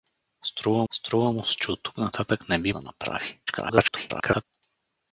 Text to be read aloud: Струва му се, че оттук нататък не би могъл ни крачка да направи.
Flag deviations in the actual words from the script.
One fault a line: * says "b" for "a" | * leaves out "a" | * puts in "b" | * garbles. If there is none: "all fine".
* puts in "струва"
* leaves out "могъл ни крачка"
* garbles